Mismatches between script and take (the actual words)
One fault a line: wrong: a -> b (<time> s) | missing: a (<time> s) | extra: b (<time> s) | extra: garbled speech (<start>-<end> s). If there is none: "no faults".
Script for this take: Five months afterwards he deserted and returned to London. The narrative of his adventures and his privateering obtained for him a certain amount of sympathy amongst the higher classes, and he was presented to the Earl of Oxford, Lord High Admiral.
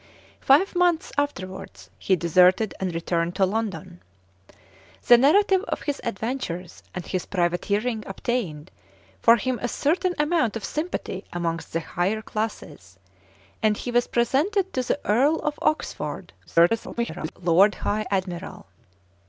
extra: garbled speech (16.5-17.3 s)